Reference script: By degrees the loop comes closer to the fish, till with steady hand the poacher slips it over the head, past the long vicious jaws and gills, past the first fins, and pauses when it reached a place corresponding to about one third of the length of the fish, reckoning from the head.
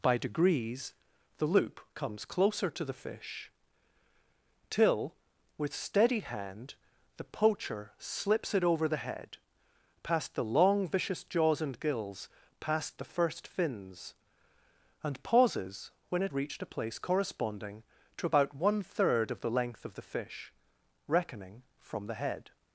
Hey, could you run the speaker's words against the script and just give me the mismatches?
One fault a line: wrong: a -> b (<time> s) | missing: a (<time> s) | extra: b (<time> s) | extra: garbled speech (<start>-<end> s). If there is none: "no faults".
no faults